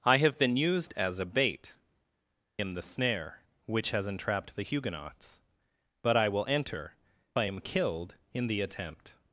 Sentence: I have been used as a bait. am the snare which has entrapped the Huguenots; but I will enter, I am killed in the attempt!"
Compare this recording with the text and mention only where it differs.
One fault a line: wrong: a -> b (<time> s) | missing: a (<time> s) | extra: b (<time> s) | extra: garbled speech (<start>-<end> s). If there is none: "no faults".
no faults